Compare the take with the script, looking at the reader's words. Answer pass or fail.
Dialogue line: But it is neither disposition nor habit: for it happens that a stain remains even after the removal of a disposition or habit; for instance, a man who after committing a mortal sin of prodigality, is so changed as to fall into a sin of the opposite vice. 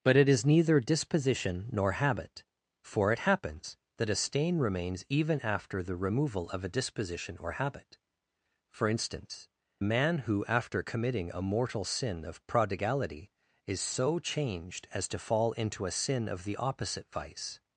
pass